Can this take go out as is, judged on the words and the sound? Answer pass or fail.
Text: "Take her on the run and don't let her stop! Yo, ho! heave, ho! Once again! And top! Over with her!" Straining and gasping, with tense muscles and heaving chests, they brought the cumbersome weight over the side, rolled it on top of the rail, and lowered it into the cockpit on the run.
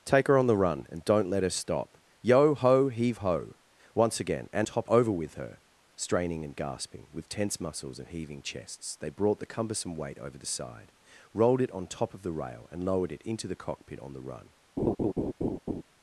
fail